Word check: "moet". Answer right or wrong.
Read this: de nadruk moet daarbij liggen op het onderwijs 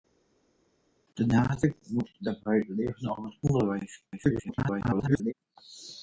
right